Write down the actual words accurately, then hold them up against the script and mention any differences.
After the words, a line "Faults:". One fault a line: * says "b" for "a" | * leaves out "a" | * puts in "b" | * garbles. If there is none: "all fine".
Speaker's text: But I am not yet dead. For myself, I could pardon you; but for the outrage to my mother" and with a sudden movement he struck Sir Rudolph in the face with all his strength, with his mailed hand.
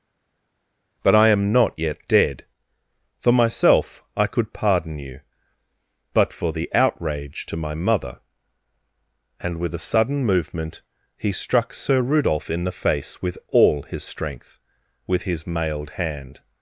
But I am not yet dead. For myself, I could pardon you; but for the outrage to my mother" and with a sudden movement he struck Sir Rudolph in the face with all his strength, with his mailed hand.
Faults:
all fine